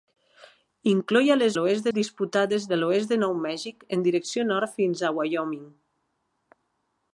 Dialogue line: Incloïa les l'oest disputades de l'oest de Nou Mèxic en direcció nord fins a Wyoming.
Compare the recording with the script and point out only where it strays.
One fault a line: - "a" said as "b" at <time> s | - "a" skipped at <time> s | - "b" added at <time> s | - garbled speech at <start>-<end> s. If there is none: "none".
none